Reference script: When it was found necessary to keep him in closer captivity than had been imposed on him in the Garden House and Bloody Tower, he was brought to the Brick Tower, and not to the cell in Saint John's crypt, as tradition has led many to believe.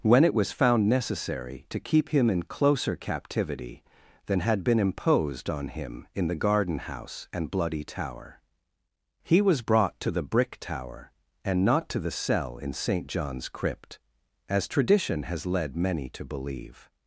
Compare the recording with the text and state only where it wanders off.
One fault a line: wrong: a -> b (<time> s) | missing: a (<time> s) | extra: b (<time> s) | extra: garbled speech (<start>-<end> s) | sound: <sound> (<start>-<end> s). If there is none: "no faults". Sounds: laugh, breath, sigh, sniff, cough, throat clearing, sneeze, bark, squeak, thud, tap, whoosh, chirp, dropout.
no faults